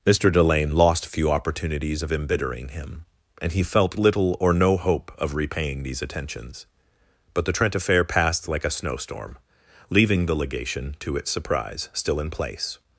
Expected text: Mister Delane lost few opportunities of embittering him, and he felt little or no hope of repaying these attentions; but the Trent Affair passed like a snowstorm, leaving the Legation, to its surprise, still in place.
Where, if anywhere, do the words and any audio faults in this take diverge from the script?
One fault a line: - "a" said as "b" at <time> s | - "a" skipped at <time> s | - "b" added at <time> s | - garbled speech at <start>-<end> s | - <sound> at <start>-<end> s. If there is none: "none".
none